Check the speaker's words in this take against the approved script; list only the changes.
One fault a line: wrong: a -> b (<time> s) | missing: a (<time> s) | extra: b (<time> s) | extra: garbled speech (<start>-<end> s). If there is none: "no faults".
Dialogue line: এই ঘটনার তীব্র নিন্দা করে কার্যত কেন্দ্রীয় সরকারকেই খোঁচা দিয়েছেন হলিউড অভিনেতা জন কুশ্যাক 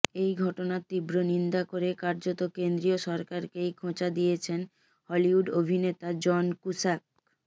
no faults